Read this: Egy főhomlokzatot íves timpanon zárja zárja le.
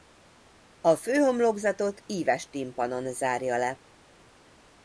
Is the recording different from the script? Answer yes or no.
yes